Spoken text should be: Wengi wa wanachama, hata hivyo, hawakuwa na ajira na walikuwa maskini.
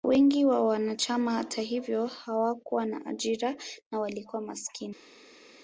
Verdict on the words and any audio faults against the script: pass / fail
pass